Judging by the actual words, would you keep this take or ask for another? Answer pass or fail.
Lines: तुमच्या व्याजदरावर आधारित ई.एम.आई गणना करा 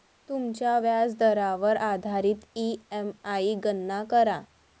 pass